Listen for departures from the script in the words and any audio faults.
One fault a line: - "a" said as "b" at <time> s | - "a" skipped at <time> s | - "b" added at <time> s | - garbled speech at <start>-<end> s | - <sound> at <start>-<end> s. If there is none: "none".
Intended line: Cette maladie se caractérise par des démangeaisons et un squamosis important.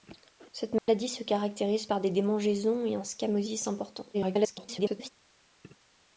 - dropout at 0.8-0.9 s
- garbled speech at 4.1-5.1 s